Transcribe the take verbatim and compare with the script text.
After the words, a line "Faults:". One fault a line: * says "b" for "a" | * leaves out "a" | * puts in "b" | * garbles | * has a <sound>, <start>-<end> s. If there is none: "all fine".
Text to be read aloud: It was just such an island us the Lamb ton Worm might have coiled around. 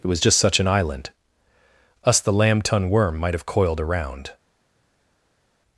It was just such an island us the Lamb ton Worm might have coiled around.
Faults:
all fine